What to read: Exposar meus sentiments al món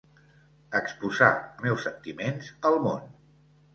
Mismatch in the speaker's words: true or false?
false